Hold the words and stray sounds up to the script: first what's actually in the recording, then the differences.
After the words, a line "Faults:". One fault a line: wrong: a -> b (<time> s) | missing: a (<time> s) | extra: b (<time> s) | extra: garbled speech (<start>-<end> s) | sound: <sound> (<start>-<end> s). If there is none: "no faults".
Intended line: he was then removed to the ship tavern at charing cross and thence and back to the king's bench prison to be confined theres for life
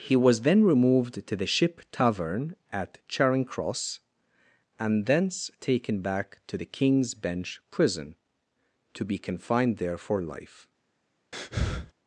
he was then removed to the ship tavern at charing cross and thence taken back to the king's bench prison to be confined there for life
Faults:
wrong: and -> taken (5.6 s)
wrong: theres -> there (9.8 s)
sound: breath (11.3-11.9 s)